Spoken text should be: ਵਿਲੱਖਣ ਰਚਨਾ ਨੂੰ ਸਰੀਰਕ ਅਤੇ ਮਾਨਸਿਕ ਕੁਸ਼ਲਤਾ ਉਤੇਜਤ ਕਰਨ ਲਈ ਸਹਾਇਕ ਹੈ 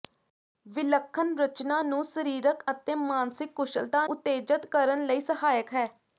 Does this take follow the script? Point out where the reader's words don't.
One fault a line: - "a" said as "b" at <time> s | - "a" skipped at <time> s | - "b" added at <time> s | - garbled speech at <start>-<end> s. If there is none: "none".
none